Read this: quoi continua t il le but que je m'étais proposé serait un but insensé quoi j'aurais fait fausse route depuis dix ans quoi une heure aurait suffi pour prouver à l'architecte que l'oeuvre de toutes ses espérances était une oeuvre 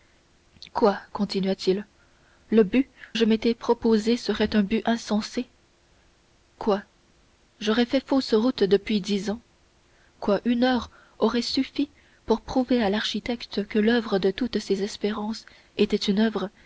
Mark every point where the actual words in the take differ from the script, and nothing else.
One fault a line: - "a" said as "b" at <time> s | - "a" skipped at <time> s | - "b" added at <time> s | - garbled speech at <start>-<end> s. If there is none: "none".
- "que" skipped at 2.9 s